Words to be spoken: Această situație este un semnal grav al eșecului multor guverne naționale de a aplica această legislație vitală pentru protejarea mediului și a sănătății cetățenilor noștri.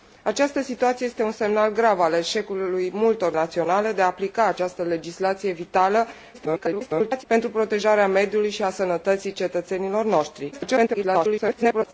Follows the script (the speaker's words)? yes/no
no